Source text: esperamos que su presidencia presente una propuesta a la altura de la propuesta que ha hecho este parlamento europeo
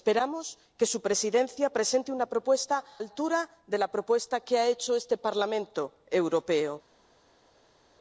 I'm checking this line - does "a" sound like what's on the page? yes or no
no